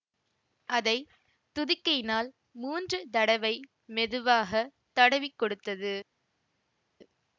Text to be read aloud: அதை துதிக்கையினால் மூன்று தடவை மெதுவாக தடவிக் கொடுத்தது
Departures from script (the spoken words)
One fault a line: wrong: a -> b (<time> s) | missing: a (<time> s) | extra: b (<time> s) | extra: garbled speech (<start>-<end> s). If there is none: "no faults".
no faults